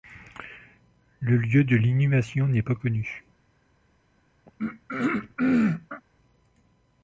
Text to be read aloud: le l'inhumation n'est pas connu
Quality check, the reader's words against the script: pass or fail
fail